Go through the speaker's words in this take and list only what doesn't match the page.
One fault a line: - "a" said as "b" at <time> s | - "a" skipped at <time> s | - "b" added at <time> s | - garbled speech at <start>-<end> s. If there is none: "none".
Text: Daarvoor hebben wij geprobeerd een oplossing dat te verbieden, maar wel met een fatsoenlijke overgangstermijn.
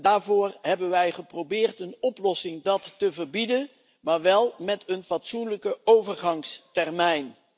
none